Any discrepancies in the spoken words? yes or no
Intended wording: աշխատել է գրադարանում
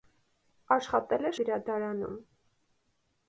no